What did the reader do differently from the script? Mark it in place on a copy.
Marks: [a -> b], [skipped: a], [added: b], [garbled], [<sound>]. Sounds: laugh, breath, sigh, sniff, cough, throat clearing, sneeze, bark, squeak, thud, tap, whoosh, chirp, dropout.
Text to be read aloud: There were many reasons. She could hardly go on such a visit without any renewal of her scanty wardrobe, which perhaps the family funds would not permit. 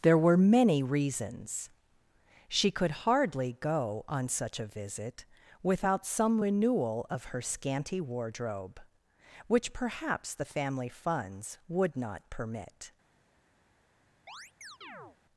There were many reasons. She could hardly go on such a visit without [any -> some] renewal of her scanty wardrobe, which perhaps the family funds would not permit. [chirp]